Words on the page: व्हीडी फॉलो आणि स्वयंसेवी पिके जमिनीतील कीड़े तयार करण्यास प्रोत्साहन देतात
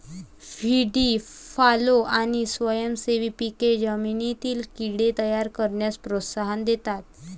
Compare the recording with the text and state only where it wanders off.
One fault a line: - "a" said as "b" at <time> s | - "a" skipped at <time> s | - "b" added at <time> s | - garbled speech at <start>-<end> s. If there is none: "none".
none